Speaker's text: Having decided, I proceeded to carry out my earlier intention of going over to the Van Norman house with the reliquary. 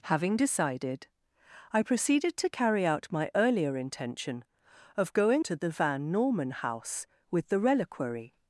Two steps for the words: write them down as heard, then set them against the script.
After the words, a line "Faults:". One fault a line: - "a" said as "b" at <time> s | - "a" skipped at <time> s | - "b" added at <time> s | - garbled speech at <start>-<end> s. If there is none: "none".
Having decided, I proceeded to carry out my earlier intention of going to the Van Norman house with the reliquary.
Faults:
- "over" skipped at 5.5 s